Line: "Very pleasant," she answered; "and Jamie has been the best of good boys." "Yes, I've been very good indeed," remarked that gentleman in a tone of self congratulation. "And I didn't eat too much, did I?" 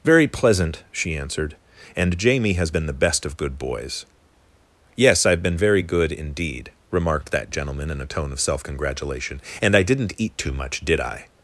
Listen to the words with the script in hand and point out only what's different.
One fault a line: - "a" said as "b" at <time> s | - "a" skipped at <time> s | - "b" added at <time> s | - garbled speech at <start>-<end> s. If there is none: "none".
none